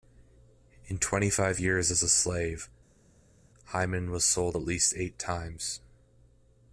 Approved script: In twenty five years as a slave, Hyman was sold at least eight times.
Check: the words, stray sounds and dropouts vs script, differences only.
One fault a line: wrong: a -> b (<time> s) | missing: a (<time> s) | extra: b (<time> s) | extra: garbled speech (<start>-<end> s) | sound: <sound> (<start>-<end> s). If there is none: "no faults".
no faults